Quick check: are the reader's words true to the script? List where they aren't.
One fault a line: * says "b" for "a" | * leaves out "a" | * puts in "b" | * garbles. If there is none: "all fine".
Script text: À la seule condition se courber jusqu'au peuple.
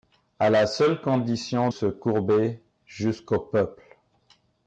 all fine